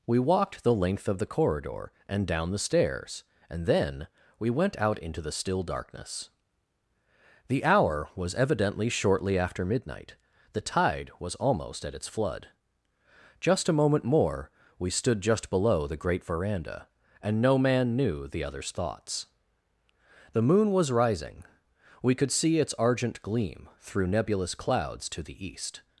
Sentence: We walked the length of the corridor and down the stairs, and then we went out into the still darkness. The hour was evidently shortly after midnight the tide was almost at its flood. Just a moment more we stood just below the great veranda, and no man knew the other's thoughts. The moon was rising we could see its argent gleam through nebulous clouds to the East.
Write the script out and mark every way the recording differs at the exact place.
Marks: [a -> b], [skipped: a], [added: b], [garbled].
We walked the length of the corridor and down the stairs, and then we went out into the still darkness. The hour was evidently shortly after midnight the tide was almost at its flood. Just a moment more we stood just below the great veranda, and no man knew the other's thoughts. The moon was rising we could see its argent gleam through nebulous clouds to the East.